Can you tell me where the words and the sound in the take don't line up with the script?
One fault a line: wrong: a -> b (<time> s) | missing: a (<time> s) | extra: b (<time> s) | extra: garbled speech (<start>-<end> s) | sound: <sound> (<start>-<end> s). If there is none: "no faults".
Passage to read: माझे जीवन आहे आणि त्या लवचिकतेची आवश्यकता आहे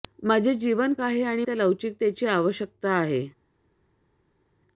no faults